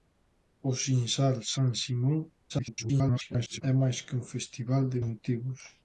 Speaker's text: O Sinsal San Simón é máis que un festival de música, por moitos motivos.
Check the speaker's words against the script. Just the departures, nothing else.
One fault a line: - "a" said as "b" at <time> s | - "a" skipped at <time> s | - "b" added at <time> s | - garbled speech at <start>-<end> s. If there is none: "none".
- garbled speech at 2.5-3.6 s
- "música por moitos" skipped at 5.0 s